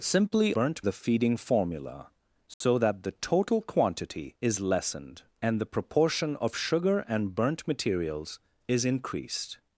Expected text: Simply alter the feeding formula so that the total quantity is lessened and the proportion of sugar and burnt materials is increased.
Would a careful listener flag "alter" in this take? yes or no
yes